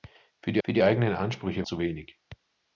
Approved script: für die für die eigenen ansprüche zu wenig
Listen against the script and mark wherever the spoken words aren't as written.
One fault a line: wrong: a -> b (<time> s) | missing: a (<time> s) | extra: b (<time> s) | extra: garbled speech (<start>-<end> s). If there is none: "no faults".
no faults